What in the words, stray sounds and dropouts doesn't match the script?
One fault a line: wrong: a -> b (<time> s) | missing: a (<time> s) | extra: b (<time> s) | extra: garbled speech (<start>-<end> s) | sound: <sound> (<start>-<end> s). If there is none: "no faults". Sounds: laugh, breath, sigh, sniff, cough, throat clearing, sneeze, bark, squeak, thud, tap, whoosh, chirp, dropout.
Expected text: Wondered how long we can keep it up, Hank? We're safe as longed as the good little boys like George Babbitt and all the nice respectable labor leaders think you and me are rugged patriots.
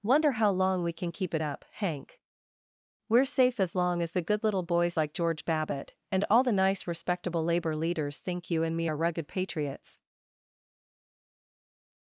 wrong: Wondered -> Wonder (0.0 s)
wrong: longed -> long (3.8 s)